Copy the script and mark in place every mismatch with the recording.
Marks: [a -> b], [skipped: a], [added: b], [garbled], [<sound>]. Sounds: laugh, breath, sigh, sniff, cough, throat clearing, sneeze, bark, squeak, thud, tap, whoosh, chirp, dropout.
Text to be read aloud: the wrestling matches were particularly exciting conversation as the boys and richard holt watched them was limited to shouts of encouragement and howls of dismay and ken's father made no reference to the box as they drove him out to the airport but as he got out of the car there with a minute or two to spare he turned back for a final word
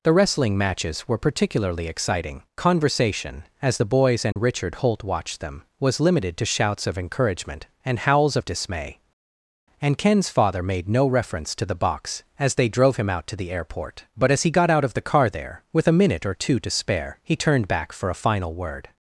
the wrestling matches were particularly exciting conversation as the boys and [dropout] richard holt watched them was limited to shouts of encouragement and howls of dismay and ken's father made no reference to the box as they drove him out to the airport but as he got out of the car there with a minute or two to spare he turned back for a final word